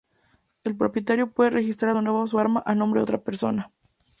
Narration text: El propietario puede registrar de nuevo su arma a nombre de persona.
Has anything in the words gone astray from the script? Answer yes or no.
yes